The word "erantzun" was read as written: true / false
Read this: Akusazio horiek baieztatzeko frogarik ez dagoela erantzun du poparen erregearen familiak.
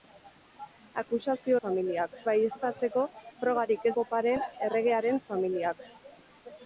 false